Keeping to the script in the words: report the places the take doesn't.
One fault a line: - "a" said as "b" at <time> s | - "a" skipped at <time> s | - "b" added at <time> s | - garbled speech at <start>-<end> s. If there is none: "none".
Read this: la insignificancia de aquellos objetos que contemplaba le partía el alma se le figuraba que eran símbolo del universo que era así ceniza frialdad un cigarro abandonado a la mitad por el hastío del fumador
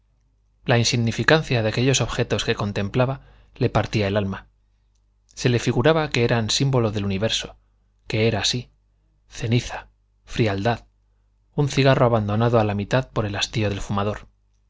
none